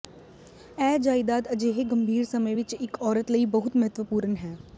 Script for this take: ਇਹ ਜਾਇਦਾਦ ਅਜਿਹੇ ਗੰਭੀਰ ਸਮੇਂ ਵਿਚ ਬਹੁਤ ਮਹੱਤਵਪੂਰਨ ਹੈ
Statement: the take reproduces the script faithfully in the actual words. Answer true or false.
false